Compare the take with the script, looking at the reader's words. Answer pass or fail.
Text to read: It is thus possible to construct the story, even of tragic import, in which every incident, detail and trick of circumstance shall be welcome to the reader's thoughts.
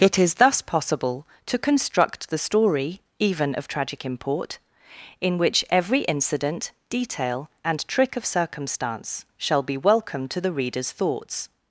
pass